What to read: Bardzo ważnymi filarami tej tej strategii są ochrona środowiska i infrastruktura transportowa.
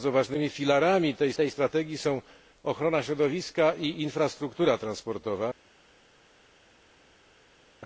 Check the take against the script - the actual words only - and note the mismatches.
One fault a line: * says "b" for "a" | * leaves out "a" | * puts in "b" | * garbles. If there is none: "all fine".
all fine